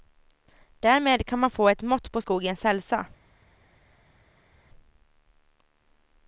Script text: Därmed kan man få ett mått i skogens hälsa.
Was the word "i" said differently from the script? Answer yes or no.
yes